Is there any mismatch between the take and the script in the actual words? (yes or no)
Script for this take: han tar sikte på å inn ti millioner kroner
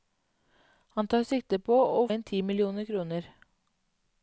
no